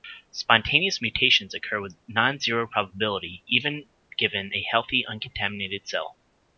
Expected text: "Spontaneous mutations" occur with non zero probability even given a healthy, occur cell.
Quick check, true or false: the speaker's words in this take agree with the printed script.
false